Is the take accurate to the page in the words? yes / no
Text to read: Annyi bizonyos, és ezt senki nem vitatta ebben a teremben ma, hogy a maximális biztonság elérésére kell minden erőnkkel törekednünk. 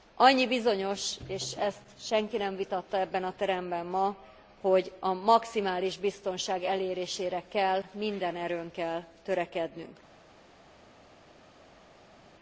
yes